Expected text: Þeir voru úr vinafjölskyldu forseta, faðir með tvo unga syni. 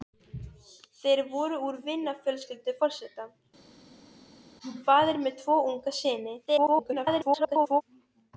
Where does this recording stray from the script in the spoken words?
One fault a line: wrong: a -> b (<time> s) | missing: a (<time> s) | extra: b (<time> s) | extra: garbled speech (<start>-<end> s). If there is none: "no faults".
extra: garbled speech (6.5-7.8 s)